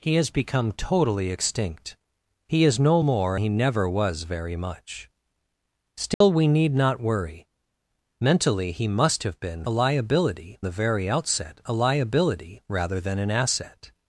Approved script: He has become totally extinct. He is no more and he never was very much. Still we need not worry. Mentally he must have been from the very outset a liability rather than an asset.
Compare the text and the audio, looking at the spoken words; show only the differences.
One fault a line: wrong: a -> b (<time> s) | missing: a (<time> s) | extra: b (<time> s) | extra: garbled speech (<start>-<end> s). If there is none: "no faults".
missing: and (3.4 s)
wrong: from -> liability (9.7 s)